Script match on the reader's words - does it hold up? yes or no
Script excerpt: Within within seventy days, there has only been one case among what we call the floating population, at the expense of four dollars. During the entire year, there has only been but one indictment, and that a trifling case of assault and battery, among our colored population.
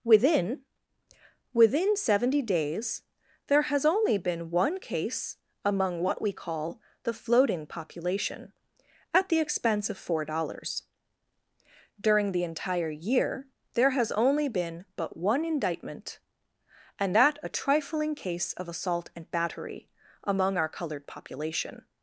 yes